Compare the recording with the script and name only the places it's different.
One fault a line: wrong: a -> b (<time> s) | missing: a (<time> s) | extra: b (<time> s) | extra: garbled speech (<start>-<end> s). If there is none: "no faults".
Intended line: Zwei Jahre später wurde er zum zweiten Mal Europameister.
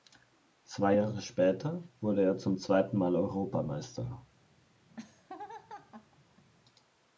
no faults